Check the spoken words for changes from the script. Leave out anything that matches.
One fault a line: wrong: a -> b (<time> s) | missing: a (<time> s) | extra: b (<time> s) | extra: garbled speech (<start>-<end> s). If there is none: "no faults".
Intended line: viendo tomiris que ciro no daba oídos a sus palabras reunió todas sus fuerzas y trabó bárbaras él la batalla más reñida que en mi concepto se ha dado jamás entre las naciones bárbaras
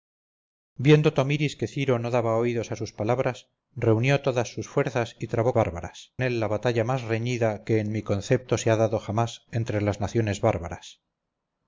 no faults